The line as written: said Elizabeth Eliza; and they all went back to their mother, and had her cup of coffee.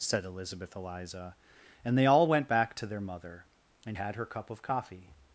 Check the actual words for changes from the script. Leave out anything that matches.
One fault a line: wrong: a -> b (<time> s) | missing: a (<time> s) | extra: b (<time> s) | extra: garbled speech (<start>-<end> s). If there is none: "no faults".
no faults